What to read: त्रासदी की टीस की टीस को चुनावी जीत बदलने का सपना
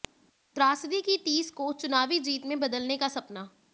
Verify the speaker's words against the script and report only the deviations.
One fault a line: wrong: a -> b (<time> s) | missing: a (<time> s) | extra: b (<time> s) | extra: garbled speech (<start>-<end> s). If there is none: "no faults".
missing: की टीस (1.5 s)
extra: में (2.5 s)